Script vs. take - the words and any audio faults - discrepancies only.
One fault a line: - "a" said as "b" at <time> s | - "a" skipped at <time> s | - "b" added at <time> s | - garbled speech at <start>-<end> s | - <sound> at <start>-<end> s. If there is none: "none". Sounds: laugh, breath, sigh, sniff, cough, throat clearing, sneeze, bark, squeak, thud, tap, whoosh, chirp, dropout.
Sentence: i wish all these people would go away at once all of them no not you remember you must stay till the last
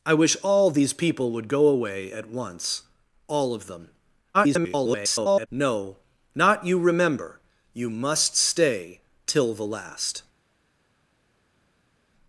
- garbled speech at 4.3-5.5 s